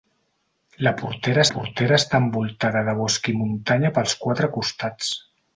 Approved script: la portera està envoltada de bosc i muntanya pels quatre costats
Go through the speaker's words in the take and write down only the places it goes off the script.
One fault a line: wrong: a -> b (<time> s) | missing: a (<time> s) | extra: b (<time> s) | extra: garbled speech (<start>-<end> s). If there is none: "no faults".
extra: portera (1.5 s)